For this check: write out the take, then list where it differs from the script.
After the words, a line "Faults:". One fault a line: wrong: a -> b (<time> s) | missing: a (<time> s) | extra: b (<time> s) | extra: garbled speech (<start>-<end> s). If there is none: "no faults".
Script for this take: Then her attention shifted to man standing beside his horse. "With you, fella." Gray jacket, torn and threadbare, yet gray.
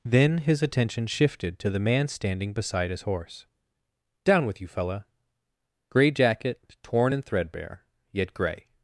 Then his attention shifted to the man standing beside his horse. "Down with you, fella." Gray jacket, torn and threadbare, yet gray.
Faults:
wrong: her -> his (0.4 s)
extra: the (1.7 s)
extra: Down (4.2 s)